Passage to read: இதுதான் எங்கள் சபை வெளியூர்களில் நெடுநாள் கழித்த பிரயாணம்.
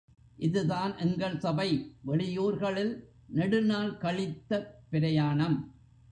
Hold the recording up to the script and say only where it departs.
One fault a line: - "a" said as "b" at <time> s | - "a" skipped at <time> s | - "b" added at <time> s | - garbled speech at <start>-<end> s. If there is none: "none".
none